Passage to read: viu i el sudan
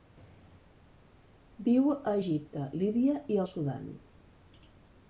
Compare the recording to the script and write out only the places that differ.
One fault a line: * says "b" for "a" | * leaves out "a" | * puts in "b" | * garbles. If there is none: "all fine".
* puts in "a egipte líbia"